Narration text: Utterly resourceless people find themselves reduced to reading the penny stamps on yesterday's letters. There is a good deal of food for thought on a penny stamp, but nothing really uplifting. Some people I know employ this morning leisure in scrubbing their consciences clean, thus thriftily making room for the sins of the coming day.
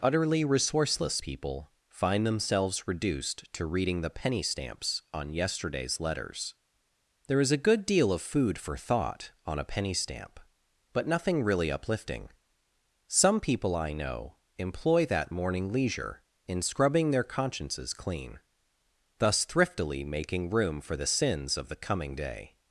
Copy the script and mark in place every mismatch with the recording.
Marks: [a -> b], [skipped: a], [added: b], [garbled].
Utterly resourceless people find themselves reduced to reading the penny stamps on yesterday's letters. There is a good deal of food for thought on a penny stamp, but nothing really uplifting. Some people I know employ [this -> that] morning leisure in scrubbing their consciences clean, thus thriftily making room for the sins of the coming day.